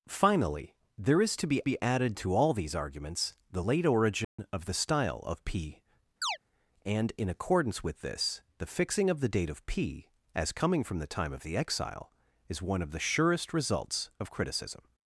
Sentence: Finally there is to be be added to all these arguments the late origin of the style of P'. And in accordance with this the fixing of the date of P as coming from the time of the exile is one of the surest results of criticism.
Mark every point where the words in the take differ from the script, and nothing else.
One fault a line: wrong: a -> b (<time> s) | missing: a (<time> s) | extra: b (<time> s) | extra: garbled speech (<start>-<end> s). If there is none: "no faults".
no faults